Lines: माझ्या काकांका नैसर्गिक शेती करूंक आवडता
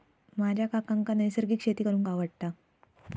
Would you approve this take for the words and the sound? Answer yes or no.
yes